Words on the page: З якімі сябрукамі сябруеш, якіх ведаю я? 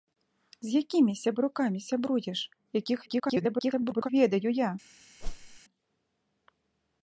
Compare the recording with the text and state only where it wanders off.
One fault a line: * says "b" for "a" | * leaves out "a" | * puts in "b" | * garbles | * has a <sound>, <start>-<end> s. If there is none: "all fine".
* garbles
* has a whoosh, 5.2-5.6 s